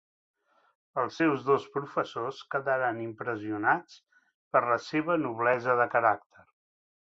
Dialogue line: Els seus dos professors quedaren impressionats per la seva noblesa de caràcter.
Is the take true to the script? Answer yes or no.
yes